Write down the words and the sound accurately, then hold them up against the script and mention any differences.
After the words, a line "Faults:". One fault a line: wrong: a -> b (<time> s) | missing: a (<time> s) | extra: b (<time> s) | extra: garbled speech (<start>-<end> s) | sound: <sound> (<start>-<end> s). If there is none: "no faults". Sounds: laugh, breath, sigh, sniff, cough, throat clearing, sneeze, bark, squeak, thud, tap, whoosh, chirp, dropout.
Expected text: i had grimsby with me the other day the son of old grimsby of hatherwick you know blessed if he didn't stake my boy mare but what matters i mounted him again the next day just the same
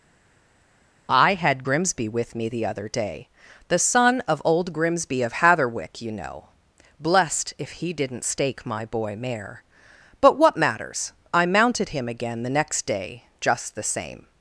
i had grimsby with me the other day the son of old grimsby of hatherwick you know blessed if he didn't stake my boy mare but what matters i mounted him again the next day just the same
Faults:
no faults